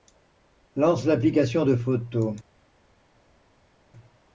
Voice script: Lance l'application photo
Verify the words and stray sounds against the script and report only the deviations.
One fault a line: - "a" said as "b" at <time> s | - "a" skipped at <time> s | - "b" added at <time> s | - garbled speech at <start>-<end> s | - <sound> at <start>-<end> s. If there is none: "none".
- "de" added at 1.7 s